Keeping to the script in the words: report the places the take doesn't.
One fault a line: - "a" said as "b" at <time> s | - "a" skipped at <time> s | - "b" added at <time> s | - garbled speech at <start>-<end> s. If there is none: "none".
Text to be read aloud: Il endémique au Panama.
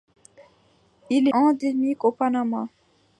none